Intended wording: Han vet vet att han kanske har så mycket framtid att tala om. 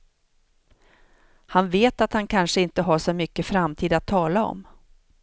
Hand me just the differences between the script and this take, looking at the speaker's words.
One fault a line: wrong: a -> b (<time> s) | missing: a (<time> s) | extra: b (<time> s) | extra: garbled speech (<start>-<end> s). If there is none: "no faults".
missing: vet (2.0 s)
extra: inte (2.6 s)